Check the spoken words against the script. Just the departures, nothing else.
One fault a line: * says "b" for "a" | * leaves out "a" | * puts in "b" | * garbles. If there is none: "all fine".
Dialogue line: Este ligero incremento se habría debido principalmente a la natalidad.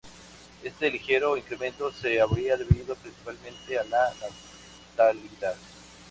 all fine